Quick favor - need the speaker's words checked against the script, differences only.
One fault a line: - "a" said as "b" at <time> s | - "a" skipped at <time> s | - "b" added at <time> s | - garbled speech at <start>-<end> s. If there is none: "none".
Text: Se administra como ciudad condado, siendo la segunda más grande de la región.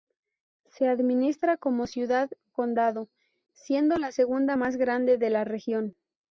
none